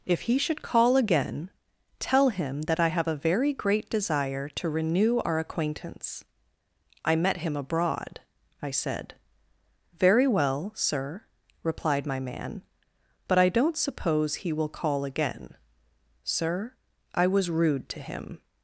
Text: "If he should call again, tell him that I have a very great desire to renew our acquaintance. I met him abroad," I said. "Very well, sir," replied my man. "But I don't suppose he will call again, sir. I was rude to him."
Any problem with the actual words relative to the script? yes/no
no